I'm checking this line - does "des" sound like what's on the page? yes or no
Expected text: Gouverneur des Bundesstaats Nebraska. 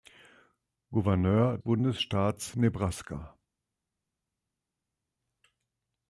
no